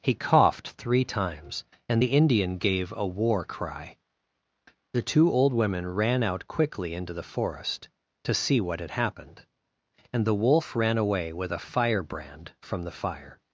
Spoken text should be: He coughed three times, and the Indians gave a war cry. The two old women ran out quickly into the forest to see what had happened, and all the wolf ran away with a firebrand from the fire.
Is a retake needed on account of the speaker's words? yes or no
yes